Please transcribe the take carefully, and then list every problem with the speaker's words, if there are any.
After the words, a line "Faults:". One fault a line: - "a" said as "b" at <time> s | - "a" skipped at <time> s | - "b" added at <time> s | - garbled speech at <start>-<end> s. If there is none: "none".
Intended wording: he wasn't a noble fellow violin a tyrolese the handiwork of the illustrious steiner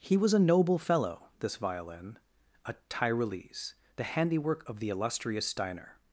he was a noble fellow this violin a tyrolese the handiwork of the illustrious steiner
Faults:
- "wasn't" said as "was" at 0.2 s
- "this" added at 1.4 s